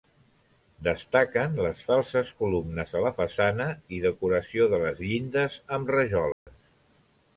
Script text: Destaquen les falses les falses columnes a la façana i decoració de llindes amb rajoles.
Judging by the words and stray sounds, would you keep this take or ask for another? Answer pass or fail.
fail